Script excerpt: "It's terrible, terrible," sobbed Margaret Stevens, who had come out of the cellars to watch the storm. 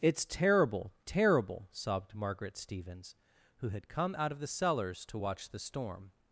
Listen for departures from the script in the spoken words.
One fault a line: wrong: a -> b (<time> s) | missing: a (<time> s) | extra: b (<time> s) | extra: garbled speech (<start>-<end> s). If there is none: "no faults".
no faults